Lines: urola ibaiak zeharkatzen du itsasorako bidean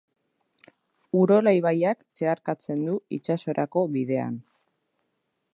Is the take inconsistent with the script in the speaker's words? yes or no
no